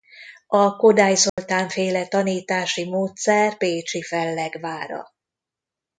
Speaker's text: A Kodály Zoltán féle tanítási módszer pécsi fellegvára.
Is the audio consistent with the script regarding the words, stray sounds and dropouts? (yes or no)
no